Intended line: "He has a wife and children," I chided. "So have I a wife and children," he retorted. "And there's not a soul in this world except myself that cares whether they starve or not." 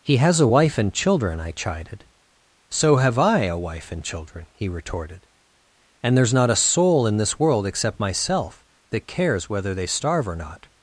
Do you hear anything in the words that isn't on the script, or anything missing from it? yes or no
no